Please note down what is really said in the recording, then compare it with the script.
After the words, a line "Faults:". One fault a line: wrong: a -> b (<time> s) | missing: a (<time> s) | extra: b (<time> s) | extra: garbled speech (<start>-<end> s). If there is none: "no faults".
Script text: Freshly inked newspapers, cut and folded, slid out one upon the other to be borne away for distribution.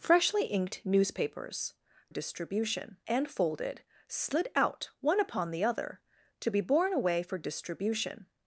Freshly inked newspapers, distribution and folded, slid out one upon the other to be borne away for distribution.
Faults:
wrong: cut -> distribution (2.1 s)